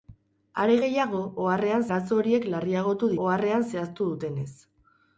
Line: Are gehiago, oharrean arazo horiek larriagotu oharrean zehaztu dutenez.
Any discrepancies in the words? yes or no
no